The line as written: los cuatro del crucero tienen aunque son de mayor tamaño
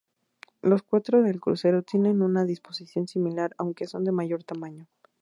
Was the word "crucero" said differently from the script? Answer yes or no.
no